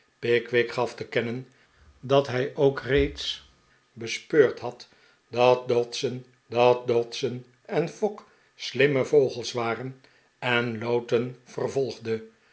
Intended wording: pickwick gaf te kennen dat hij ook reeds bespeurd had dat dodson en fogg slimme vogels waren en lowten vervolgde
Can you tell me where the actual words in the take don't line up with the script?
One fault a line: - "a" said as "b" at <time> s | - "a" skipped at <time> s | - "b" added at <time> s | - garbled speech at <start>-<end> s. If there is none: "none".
- "dat dodson" added at 6.5 s